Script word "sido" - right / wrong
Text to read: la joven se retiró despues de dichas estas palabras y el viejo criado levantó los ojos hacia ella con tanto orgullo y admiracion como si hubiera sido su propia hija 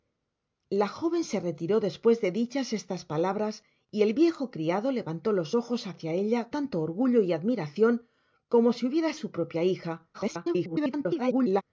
wrong